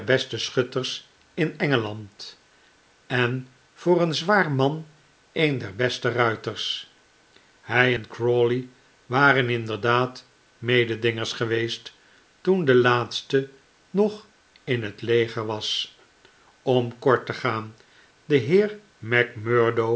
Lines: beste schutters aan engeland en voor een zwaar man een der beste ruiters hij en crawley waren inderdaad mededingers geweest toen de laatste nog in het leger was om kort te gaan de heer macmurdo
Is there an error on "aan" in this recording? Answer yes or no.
yes